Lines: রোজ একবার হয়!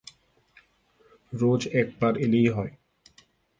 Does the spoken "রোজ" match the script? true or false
true